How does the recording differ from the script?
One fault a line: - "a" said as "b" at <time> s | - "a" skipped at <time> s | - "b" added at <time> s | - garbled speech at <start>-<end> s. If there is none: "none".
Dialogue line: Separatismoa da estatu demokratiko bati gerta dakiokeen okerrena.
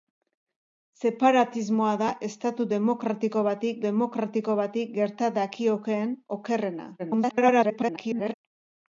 - "demokratiko bati" added at 3.8 s
- garbled speech at 7.0-8.3 s